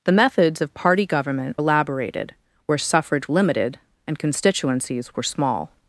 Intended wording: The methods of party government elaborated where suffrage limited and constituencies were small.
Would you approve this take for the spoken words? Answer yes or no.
yes